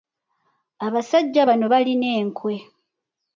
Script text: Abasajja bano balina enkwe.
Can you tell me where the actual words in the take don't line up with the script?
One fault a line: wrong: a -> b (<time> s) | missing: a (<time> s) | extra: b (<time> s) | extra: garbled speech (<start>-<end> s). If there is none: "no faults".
no faults